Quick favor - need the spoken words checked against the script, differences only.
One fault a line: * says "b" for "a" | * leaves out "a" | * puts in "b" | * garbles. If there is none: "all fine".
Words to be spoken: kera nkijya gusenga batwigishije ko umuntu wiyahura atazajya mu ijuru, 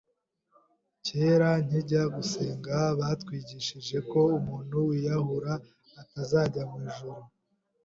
all fine